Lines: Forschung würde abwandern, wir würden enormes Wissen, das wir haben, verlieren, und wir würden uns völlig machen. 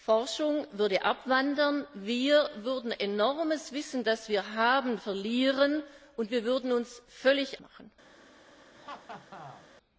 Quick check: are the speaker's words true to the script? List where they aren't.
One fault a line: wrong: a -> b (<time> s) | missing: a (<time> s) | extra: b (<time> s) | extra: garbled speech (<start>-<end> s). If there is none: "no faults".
no faults